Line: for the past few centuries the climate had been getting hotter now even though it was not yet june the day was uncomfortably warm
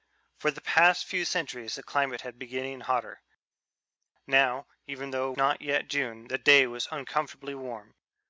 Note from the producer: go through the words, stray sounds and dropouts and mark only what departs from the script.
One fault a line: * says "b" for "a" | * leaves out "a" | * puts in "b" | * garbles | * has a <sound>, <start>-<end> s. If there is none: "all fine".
* leaves out "was"